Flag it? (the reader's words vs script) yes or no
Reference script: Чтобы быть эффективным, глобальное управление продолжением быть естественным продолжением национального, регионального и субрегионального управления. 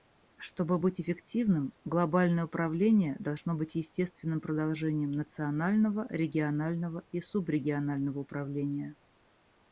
yes